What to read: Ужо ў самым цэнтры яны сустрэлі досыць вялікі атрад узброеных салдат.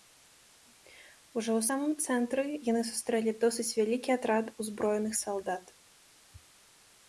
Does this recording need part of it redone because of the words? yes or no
no